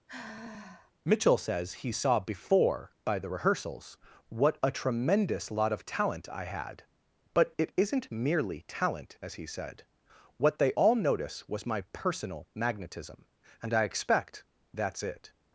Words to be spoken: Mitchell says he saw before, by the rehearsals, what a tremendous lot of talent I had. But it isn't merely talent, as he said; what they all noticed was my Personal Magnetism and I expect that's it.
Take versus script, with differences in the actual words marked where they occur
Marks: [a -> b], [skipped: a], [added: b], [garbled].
Mitchell says he saw before, by the rehearsals, what a tremendous lot of talent I had. But it isn't merely talent, as he said; what they all [noticed -> notice] was my Personal Magnetism and I expect that's it.